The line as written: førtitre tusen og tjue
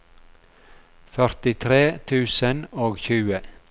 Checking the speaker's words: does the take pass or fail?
pass